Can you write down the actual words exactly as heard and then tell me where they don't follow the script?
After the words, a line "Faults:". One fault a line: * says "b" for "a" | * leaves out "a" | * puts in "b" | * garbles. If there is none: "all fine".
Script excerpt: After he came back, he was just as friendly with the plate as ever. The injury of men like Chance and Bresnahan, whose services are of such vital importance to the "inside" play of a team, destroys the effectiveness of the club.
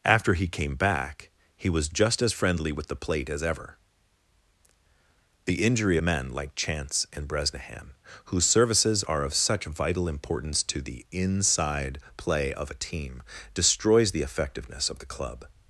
After he came back, he was just as friendly with the plate as ever. The injury men like Chance and Bresnahan, whose services are of such vital importance to the "inside" play of a team, destroys the effectiveness of the club.
Faults:
* leaves out "of"